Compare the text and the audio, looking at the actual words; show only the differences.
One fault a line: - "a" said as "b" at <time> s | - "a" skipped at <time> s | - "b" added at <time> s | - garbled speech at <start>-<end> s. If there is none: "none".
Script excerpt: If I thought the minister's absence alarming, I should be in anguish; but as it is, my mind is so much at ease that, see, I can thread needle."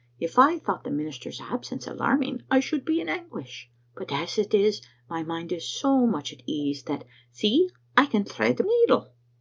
none